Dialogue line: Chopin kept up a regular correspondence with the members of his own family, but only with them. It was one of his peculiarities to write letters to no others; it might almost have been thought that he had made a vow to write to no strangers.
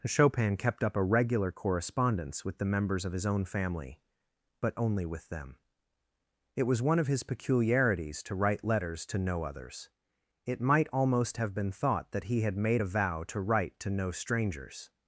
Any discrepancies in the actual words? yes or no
no